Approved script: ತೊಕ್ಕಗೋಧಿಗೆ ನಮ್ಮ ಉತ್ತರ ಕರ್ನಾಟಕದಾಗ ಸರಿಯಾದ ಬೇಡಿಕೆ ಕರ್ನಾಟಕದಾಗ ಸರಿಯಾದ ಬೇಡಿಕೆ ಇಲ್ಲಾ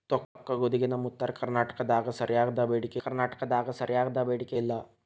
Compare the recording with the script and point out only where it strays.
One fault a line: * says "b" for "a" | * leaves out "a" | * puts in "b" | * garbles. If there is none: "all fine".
all fine